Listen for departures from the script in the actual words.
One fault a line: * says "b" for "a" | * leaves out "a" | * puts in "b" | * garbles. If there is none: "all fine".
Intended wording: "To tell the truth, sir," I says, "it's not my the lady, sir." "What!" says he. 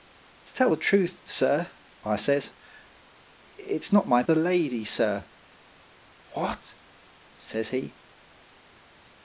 all fine